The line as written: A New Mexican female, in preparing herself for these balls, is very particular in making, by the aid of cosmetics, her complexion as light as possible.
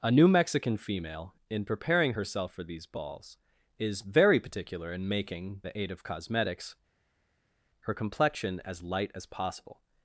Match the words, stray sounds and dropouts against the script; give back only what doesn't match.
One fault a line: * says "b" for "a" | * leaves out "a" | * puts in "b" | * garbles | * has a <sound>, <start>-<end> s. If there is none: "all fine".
* leaves out "by"